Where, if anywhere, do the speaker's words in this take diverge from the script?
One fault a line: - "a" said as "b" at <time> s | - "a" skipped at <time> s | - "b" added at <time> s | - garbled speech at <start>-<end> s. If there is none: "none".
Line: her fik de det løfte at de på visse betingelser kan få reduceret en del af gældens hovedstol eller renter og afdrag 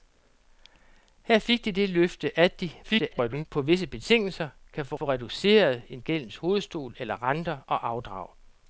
- garbled speech at 2.8-3.5 s
- "få" added at 4.9 s
- "del af" skipped at 6.0 s